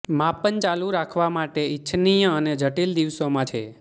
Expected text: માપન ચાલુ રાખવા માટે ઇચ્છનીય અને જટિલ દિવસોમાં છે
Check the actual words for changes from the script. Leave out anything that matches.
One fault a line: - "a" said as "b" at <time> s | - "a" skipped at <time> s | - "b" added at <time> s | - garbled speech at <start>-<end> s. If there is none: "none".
none